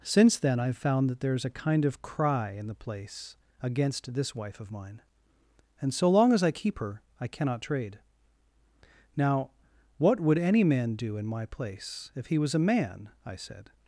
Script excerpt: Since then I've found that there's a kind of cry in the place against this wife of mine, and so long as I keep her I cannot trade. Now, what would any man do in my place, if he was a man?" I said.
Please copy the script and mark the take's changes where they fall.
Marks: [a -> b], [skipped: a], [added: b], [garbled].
Since then I've found that there's a kind of cry in the place against this wife of mine, and so long as I keep her I cannot trade. Now, what would any man do in my place, if he was a man?" I said.